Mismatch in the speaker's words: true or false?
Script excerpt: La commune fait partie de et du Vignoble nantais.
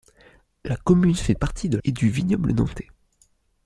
false